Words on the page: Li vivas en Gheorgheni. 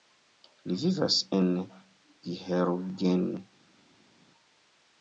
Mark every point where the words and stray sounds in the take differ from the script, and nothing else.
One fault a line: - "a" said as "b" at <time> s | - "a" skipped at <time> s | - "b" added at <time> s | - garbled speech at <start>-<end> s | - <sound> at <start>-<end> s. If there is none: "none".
none